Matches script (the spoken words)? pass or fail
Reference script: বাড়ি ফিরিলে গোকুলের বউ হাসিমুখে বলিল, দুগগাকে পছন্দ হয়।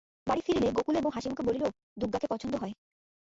pass